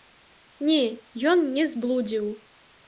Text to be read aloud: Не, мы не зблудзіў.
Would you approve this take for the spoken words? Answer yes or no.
no